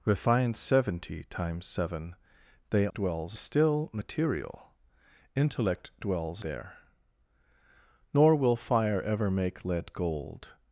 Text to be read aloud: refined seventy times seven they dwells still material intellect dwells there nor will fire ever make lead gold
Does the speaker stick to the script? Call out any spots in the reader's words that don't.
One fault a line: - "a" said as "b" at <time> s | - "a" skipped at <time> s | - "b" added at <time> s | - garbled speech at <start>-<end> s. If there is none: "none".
none